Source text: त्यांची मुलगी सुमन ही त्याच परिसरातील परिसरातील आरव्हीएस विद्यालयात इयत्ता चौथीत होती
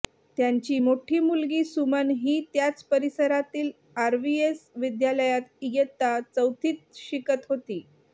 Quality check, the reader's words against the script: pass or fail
fail